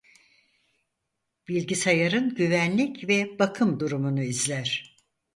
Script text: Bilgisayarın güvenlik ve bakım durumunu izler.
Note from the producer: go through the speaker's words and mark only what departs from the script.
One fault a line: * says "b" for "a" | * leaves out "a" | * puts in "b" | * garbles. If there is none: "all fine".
all fine